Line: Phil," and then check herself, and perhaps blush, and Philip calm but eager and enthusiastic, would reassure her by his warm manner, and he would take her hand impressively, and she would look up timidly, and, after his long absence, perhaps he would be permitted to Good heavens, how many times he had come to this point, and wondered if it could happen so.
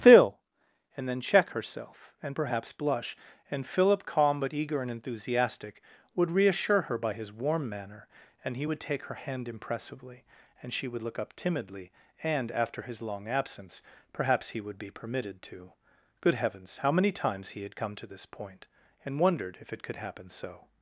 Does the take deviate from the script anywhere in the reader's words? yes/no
no